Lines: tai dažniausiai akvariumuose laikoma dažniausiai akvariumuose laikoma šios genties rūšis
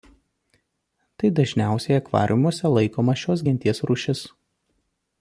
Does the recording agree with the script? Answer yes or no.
no